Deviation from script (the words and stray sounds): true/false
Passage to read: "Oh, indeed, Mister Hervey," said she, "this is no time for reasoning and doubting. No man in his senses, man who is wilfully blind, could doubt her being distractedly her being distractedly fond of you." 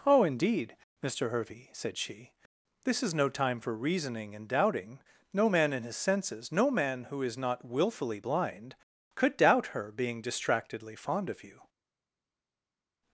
true